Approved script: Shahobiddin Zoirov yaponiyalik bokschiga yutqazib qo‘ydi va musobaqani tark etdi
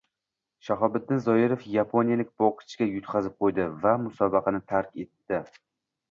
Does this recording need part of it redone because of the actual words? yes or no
no